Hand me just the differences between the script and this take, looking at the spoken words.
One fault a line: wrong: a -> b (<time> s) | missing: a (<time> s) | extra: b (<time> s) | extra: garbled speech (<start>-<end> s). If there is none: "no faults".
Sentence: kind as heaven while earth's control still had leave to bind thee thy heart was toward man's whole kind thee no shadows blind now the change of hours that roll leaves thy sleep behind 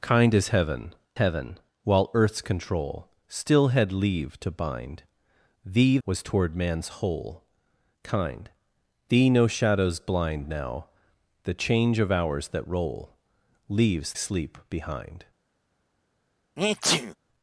extra: heaven (1.2 s)
missing: thy heart (6.0 s)
missing: thy (14.1 s)